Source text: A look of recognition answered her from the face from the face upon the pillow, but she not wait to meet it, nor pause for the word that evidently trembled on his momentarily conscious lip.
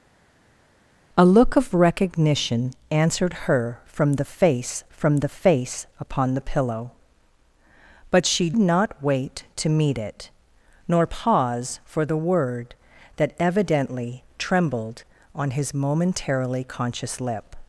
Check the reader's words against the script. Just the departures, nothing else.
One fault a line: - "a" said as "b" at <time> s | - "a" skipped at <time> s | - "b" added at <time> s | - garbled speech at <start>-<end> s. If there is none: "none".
none